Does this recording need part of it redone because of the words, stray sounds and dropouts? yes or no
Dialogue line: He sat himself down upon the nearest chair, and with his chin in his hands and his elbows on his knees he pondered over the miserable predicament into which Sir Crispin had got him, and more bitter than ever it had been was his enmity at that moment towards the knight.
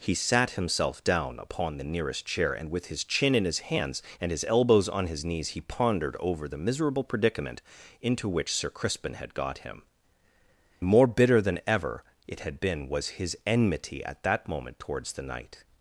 yes